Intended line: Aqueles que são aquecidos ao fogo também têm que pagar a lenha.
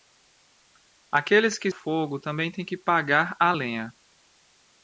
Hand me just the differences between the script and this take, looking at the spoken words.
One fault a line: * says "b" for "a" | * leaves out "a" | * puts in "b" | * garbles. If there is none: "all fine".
* leaves out "são aquecidos ao"